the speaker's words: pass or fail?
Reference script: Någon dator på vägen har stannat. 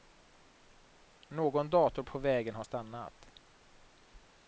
pass